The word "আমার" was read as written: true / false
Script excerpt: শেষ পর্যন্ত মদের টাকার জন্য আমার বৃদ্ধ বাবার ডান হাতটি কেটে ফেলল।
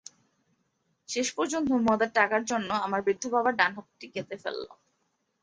true